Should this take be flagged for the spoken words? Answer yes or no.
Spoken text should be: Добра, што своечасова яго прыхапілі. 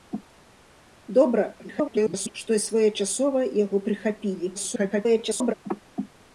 yes